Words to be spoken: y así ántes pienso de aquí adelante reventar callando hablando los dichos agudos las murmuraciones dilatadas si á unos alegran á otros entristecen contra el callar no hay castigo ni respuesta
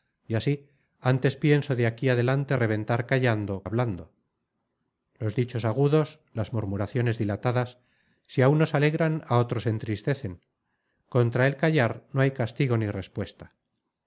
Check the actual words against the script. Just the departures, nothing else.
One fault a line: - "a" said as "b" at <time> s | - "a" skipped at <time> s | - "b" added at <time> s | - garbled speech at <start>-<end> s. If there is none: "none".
none